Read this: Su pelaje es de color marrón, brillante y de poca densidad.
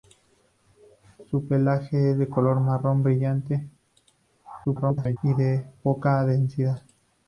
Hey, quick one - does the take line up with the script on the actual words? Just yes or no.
no